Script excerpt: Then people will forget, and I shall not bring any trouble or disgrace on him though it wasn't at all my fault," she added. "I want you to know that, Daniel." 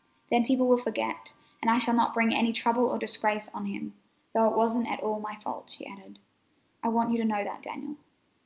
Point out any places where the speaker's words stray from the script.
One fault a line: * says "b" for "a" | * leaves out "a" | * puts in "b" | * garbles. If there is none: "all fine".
all fine